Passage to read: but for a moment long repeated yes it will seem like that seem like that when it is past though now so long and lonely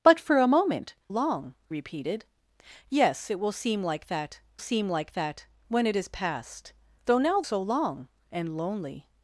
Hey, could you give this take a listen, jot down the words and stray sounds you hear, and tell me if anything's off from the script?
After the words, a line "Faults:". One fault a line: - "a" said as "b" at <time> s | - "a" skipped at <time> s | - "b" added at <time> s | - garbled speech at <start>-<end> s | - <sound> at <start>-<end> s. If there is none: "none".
but for a moment long repeated yes it will seem like that seem like that when it is past though now so long and lonely
Faults:
none